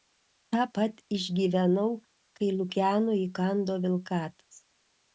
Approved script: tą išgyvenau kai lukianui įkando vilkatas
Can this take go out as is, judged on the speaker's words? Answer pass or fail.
fail